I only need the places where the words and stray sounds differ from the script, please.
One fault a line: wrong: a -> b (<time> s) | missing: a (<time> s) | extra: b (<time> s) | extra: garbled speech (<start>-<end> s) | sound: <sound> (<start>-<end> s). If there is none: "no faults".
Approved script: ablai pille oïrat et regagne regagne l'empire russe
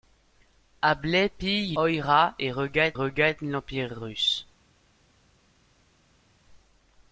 no faults